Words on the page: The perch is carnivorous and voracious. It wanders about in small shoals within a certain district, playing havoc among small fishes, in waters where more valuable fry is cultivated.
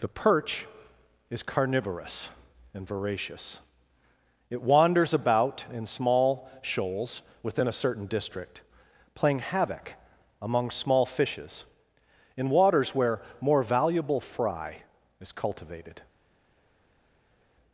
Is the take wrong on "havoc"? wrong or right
right